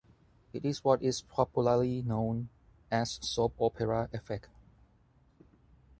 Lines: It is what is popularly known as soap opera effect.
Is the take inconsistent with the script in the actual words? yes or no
no